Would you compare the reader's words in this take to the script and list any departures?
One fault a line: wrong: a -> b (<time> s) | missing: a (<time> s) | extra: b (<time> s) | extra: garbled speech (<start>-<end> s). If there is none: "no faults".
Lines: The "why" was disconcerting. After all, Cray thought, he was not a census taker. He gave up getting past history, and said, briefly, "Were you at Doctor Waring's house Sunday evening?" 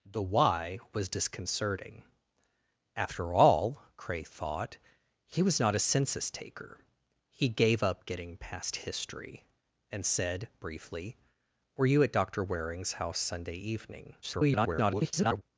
extra: garbled speech (14.2-15.4 s)